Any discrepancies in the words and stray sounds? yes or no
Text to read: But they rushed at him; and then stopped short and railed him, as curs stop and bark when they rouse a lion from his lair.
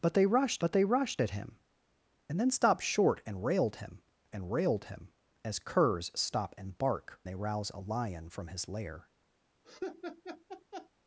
yes